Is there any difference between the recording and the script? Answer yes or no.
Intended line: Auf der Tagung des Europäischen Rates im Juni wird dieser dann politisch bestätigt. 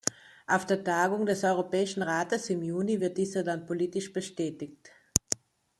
no